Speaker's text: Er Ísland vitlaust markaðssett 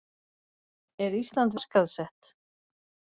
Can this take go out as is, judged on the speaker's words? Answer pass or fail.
fail